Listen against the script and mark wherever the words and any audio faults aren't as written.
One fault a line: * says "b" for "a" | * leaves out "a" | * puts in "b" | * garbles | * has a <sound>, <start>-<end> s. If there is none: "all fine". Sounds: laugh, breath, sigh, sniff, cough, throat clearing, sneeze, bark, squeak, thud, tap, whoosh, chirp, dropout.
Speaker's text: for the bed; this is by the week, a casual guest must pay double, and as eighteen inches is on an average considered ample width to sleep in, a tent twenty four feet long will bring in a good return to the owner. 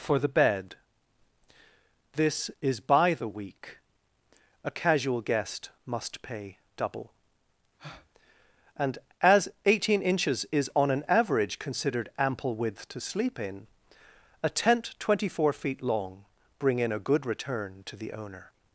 * has a breath, 7.8-8.1 s
* leaves out "will"